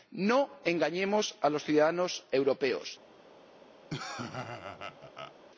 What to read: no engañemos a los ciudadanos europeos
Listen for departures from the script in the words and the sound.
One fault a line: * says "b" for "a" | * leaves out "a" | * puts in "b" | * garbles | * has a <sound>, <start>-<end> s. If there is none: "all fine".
* has a laugh, 3.9-5.3 s